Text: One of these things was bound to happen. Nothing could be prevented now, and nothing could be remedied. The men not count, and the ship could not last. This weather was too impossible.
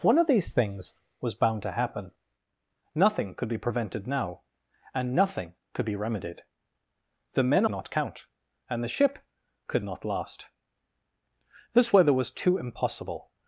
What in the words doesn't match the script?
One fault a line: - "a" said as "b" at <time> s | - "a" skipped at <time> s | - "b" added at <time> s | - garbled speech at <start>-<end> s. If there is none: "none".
none